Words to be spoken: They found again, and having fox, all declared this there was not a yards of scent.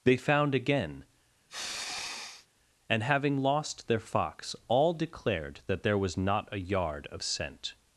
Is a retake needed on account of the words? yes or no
yes